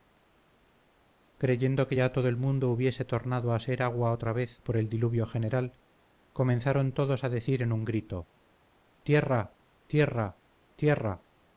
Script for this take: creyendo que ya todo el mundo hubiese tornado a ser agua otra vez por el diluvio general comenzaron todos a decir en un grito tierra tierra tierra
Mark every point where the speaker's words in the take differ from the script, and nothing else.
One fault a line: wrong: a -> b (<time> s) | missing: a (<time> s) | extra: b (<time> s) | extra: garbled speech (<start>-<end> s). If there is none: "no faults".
no faults